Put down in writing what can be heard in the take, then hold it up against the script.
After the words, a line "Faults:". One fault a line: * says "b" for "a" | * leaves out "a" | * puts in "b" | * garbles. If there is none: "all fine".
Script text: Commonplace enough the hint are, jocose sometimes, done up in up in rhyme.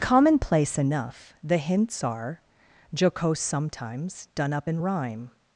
Commonplace enough the hints are, jocose sometimes, done up in rhyme.
Faults:
* says "hints" for "hint"
* leaves out "up in"